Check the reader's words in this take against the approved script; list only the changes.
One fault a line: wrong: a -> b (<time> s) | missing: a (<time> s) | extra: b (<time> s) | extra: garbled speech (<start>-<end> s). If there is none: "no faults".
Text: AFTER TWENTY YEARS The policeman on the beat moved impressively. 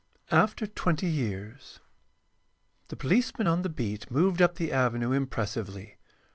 extra: up the avenue (4.4 s)